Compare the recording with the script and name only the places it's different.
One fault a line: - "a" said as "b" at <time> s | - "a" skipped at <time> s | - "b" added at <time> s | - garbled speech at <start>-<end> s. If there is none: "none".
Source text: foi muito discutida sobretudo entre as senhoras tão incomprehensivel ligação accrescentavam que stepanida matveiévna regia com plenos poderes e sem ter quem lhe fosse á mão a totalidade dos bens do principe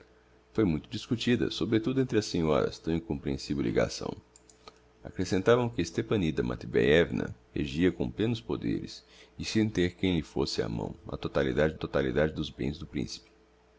- "totalidade" added at 11.8 s